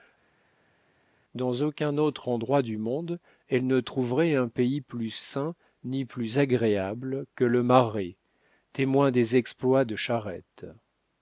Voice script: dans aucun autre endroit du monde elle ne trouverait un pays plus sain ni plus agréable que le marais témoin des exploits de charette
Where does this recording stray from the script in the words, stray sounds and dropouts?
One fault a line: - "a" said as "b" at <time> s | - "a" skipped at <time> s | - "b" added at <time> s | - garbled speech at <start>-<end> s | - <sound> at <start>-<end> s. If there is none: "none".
none